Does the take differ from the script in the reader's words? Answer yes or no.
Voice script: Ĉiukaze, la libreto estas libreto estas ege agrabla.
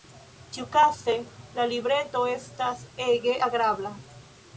yes